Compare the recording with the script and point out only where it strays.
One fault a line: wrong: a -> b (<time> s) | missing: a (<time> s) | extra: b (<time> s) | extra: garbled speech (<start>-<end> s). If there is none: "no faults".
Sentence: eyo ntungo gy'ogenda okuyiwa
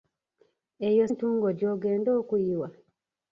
no faults